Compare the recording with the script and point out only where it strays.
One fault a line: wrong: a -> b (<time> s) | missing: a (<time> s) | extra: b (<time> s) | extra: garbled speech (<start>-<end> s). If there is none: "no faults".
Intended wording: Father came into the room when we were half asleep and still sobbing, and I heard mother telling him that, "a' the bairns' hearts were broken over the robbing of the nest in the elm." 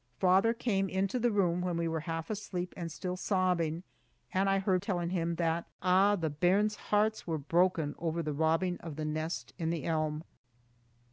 missing: mother (4.8 s)